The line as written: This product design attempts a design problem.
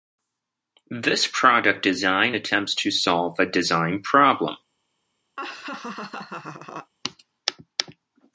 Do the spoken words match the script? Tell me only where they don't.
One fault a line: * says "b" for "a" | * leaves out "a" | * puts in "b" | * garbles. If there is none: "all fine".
* puts in "to solve"